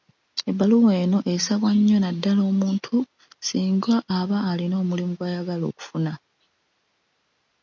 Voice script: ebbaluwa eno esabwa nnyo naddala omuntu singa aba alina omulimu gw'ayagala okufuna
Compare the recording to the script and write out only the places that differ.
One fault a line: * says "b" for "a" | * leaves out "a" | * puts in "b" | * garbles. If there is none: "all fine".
all fine